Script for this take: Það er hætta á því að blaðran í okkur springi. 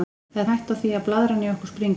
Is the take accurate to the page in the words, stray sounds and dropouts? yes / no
yes